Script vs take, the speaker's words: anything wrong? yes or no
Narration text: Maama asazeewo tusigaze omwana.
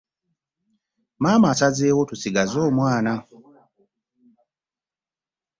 no